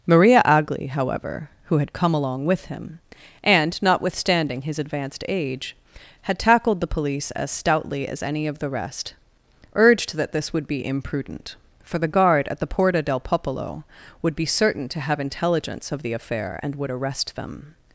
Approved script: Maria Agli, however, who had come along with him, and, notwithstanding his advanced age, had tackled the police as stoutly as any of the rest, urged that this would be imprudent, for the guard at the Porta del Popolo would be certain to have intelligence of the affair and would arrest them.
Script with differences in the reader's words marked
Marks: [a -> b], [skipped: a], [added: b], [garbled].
Maria Agli, however, who had come along with him, and, notwithstanding his advanced age, had tackled the police as stoutly as any of the rest, urged that this would be imprudent, for the guard at the Porta del Popolo would be certain to have intelligence of the affair and would arrest them.